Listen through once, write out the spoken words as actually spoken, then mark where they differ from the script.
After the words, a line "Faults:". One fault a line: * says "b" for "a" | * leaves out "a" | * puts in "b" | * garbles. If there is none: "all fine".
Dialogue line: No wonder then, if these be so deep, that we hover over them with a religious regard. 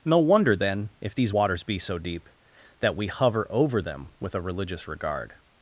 No wonder then, if these waters be so deep, that we hover over them with a religious regard.
Faults:
* puts in "waters"